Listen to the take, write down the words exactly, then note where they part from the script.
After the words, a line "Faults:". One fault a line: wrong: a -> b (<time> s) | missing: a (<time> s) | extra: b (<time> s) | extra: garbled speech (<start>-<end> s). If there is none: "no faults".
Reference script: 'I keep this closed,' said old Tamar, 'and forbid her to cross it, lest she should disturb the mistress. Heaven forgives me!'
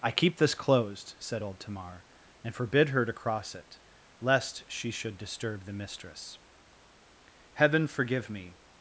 'I keep this closed,' said old Tamar, 'and forbid her to cross it, lest she should disturb the mistress. Heaven forgive me!'
Faults:
wrong: forgives -> forgive (7.9 s)